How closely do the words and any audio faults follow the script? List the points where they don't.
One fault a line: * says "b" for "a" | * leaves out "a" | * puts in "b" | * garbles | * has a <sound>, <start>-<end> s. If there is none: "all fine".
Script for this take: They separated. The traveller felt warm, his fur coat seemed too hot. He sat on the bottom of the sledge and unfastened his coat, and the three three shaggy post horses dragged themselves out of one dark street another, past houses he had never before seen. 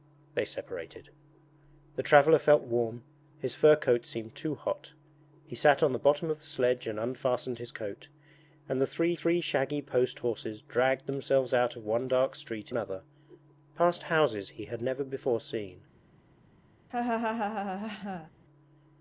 * has a laugh, 16.9-18.3 s